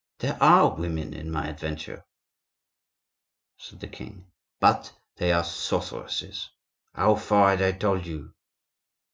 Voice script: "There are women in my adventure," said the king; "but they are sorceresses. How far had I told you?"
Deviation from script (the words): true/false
false